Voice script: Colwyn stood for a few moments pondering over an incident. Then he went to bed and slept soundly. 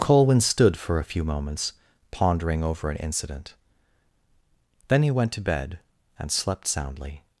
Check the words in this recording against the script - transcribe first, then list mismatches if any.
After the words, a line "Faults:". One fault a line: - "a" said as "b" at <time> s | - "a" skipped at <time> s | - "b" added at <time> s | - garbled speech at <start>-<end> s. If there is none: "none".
Colwyn stood for a few moments pondering over an incident. Then he went to bed and slept soundly.
Faults:
none